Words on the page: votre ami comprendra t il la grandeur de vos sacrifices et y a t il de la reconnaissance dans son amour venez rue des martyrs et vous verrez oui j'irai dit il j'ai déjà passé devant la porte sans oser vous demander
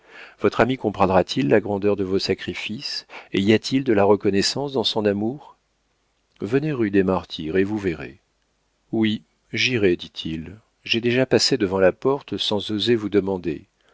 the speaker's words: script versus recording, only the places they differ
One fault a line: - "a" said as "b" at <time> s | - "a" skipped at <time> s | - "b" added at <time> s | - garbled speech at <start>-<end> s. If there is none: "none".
none